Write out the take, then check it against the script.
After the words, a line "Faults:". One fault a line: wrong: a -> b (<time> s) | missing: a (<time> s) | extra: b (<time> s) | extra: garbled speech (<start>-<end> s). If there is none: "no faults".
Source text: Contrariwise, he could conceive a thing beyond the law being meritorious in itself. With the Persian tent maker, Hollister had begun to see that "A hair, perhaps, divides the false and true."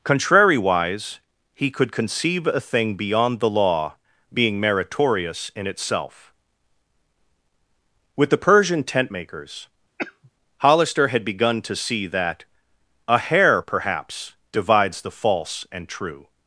Contrariwise, he could conceive a thing beyond the law being meritorious in itself. With the Persian tent makers, Hollister had begun to see that "A hair, perhaps, divides the false and true."
Faults:
wrong: maker -> makers (9.1 s)